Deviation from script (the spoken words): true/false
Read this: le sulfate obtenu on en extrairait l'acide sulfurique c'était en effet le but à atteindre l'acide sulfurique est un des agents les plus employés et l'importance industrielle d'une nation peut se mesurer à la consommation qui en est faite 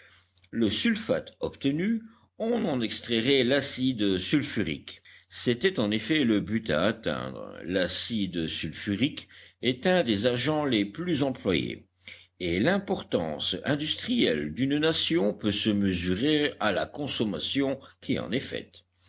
false